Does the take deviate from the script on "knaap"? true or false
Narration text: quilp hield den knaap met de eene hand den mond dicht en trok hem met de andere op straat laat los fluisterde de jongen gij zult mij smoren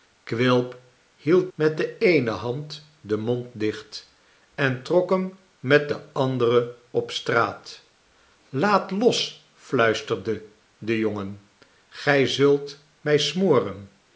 true